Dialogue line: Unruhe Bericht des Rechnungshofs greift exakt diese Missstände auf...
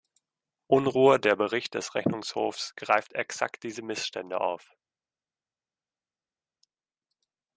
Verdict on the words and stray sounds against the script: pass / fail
fail